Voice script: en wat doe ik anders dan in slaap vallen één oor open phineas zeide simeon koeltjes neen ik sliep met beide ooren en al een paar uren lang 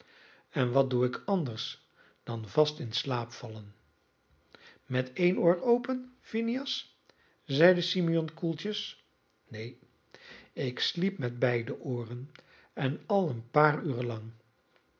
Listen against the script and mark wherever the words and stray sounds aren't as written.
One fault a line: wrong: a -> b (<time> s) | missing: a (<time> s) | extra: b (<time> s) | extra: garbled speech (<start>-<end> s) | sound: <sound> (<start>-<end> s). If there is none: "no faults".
extra: vast (2.5 s)
extra: met (4.8 s)